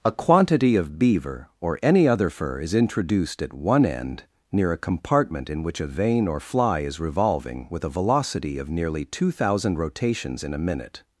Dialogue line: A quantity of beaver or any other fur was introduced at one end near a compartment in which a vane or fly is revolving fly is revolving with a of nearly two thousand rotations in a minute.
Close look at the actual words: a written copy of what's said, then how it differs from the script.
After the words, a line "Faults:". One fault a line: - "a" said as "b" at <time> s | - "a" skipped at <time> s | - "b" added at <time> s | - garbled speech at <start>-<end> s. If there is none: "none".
A quantity of beaver or any other fur is introduced at one end near a compartment in which a vane or fly is revolving with a velocity of nearly two thousand rotations in a minute.
Faults:
- "was" said as "is" at 2.6 s
- "fly is revolving" skipped at 7.7 s
- "velocity" added at 7.9 s